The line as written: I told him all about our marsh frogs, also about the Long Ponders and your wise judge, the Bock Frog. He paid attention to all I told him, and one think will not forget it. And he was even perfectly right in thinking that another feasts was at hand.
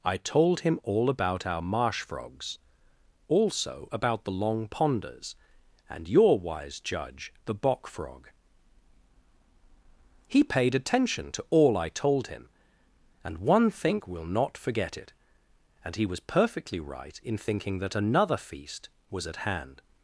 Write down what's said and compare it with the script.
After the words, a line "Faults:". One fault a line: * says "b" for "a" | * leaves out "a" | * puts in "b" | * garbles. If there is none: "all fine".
I told him all about our marsh frogs, also about the Long Ponders and your wise judge, the Bock Frog. He paid attention to all I told him, and one think will not forget it. And he was perfectly right in thinking that another feast was at hand.
Faults:
* leaves out "even"
* says "feast" for "feasts"